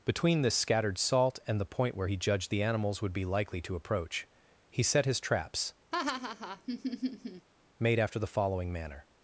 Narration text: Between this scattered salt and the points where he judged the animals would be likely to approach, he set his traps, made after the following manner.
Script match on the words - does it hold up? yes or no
no